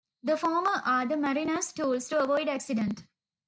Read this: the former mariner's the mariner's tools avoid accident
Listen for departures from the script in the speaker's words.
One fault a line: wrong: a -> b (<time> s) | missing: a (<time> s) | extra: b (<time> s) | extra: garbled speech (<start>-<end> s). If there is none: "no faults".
wrong: mariner's -> are (0.8 s)
extra: to (2.1 s)